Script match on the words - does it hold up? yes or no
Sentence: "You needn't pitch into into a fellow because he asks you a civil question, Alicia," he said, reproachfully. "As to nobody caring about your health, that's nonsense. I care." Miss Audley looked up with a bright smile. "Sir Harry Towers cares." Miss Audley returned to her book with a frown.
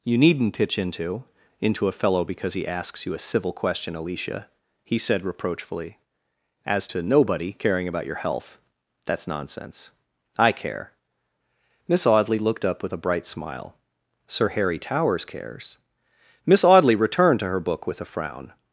yes